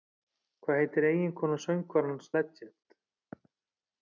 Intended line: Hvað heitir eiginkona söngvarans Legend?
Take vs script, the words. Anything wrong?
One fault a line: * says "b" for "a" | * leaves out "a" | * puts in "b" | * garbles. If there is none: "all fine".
all fine